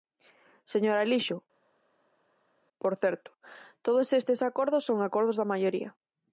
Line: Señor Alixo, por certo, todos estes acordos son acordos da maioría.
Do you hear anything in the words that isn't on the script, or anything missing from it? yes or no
no